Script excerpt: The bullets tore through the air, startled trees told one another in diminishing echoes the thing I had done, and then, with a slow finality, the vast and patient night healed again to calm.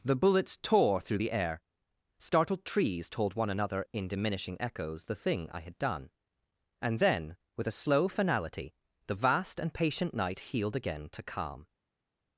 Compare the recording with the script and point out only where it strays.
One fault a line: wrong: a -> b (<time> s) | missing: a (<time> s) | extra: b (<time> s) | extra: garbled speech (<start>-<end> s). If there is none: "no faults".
no faults